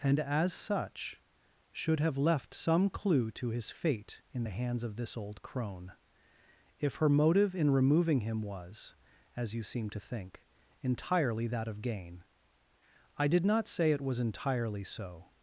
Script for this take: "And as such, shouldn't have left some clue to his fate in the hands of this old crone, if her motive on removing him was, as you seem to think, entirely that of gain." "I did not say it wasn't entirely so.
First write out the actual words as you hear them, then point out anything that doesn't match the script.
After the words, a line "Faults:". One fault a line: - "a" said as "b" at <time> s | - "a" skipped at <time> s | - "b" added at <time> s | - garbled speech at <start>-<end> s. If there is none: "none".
"And as such, should have left some clue to his fate in the hands of this old crone, if her motive in removing him was, as you seem to think, entirely that of gain." "I did not say it was entirely so.
Faults:
- "shouldn't" said as "should" at 1.7 s
- "on" said as "in" at 7.5 s
- "wasn't" said as "was" at 14.0 s